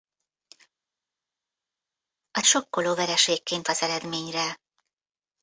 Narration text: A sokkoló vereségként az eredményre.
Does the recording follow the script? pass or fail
pass